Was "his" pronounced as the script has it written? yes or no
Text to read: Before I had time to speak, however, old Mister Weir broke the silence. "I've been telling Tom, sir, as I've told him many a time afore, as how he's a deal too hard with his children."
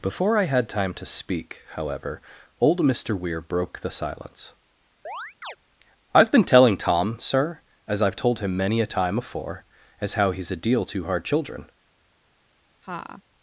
no